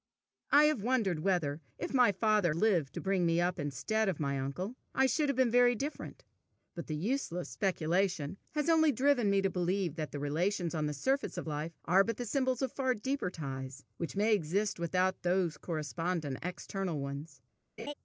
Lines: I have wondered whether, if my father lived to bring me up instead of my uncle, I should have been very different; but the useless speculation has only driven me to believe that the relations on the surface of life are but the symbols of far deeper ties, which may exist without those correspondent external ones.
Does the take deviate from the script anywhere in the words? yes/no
no